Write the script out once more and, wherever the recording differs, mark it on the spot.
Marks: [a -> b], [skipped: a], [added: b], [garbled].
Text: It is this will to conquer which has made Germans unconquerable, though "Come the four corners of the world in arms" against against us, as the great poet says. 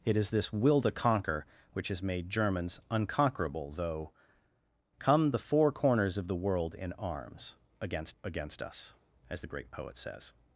It is this will to conquer which has made Germans unconquerable, though "Come the four corners of the world in arms" against against us, as the great poet says.